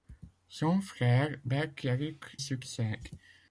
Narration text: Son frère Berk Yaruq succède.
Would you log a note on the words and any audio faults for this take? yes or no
no